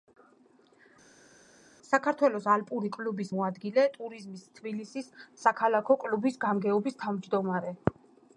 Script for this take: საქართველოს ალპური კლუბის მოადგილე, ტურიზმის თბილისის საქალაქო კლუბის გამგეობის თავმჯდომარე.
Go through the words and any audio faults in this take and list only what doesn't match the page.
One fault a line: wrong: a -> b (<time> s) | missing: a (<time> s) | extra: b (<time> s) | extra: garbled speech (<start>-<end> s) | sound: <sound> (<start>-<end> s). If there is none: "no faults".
no faults